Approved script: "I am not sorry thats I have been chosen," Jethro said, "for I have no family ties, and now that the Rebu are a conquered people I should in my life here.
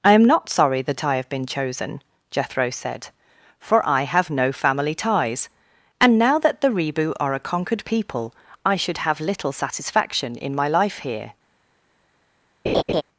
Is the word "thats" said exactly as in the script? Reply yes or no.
no